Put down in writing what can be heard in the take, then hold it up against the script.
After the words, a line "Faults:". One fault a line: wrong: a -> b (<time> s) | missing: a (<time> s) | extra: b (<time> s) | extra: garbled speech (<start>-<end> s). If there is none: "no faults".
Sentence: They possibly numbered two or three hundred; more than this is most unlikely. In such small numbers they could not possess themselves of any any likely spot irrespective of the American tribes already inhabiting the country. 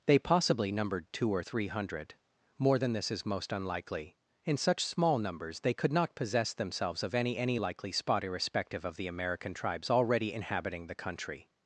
They possibly numbered two or three hundred; more than this is most unlikely. In such small numbers they could not possess themselves of any any likely spot irrespective of the American tribes already inhabiting the country.
Faults:
no faults